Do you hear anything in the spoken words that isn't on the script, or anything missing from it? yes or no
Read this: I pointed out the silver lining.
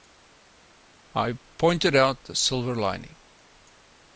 no